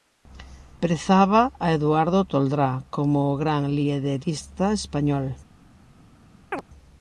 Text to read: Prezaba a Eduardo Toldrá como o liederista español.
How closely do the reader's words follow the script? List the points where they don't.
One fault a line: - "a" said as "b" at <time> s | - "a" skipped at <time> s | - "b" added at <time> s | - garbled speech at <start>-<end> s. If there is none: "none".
- "gran" added at 3.4 s